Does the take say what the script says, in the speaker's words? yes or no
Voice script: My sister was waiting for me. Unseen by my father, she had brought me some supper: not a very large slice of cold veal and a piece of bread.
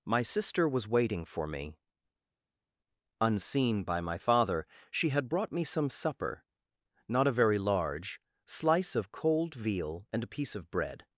yes